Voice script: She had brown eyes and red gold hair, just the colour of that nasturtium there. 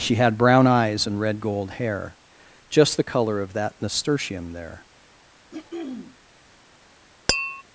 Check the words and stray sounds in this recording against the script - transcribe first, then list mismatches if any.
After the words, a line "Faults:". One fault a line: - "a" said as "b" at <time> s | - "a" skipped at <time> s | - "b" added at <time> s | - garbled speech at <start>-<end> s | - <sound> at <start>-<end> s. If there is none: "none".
She had brown eyes and red gold hair, just the colour of that nasturtium there.
Faults:
- throat clearing at 5.5-6.2 s
- tap at 7.3-7.6 s